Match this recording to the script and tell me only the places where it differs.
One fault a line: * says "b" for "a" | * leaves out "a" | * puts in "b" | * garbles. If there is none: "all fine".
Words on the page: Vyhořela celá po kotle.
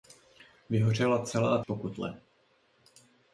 all fine